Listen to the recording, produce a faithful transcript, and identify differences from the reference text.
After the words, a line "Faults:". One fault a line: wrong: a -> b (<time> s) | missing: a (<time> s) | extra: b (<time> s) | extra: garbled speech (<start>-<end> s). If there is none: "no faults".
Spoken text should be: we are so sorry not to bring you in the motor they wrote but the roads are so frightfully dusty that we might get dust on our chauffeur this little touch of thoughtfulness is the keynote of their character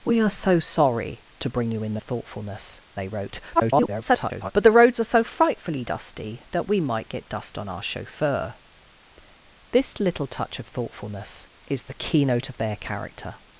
we are so sorry to bring you in the thoughtfulness they wrote [garbled] but the roads are so frightfully dusty that we might get dust on our chauffeur this little touch of thoughtfulness is the keynote of their character
Faults:
missing: not (1.2 s)
wrong: motor -> thoughtfulness (2.0 s)
extra: garbled speech (3.5-4.5 s)